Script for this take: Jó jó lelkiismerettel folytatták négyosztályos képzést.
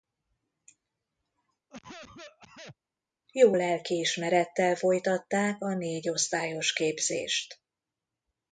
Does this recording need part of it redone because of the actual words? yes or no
yes